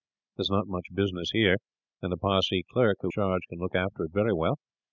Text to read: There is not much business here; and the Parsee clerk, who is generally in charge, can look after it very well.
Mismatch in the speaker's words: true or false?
true